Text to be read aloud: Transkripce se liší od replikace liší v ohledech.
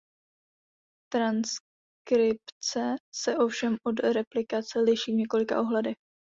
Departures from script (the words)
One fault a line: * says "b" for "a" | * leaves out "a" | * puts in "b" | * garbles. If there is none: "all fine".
* says "ovšem" for "liší"
* puts in "několika"